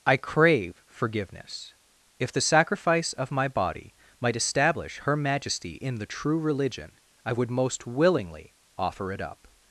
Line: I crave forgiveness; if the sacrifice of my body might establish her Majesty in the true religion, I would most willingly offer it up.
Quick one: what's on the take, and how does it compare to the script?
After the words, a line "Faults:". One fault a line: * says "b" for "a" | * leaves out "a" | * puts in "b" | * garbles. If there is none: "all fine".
I crave forgiveness; if the sacrifice of my body might establish her Majesty in the true religion, I would most willingly offer it up.
Faults:
all fine